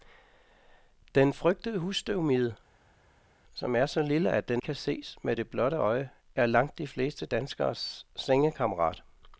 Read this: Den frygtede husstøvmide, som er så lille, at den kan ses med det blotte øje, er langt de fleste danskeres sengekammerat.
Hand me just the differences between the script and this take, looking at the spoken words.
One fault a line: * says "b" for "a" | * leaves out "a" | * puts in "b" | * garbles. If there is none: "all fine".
all fine